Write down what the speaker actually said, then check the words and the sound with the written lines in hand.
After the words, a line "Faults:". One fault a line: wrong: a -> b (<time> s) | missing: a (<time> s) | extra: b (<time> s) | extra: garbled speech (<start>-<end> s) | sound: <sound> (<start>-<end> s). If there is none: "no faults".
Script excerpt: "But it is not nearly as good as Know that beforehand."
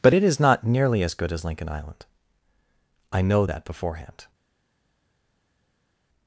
"But it is not nearly as good as Lincoln Island." "I know that beforehand."
Faults:
extra: Lincoln Island I (1.4 s)